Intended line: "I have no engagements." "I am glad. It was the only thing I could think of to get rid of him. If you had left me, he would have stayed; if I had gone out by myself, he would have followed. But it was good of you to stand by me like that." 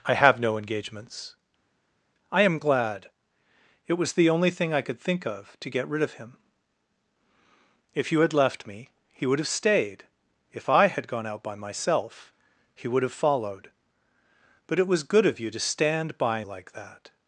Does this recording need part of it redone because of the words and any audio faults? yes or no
yes